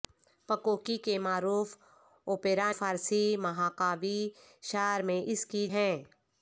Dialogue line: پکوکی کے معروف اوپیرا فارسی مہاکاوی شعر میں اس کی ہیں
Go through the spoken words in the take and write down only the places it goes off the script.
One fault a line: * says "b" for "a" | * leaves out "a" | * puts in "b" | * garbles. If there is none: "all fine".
all fine